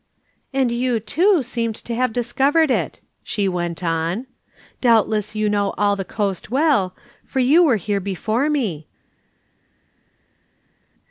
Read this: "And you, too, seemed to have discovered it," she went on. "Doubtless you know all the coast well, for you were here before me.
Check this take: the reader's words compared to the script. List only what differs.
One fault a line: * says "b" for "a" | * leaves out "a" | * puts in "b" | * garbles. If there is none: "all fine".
all fine